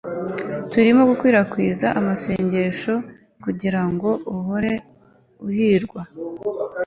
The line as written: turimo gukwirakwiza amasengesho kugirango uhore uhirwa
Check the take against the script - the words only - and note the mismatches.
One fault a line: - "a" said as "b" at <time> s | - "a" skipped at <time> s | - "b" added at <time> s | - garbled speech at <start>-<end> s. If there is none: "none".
none